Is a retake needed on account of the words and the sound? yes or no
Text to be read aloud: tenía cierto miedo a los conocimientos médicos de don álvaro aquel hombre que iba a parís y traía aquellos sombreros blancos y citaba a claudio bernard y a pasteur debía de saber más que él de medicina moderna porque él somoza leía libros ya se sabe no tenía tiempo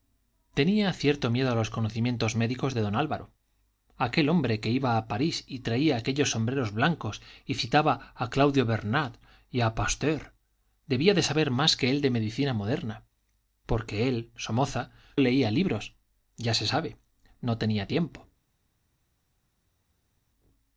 no